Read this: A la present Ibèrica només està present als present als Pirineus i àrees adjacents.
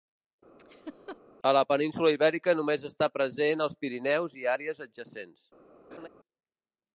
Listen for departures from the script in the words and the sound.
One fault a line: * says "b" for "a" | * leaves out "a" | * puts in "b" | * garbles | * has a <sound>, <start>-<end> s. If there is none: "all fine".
* has a laugh, 0.6-1.2 s
* says "península" for "present"
* leaves out "present als"
* has a laugh, 5.9-6.1 s